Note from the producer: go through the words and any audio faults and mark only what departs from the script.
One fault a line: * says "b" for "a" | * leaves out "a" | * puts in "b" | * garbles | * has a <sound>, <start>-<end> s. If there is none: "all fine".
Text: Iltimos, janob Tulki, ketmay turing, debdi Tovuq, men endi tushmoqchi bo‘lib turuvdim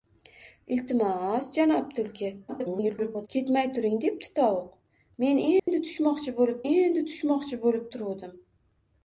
* garbles
* has a dropout, 5.6-5.7 s
* puts in "endi tushmoqchi bo‘lib"